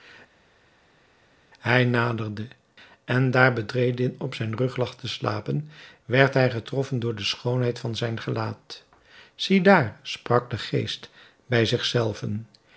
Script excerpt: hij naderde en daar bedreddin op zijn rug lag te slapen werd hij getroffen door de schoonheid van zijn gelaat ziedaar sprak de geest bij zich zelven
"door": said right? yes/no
yes